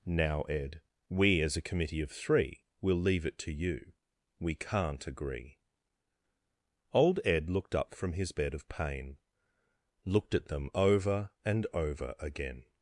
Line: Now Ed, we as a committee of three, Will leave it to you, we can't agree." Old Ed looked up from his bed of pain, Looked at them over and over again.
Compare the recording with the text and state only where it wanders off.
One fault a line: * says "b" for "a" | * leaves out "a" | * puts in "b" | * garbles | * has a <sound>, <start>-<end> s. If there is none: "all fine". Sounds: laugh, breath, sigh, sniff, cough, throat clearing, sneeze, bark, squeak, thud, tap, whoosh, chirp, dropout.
all fine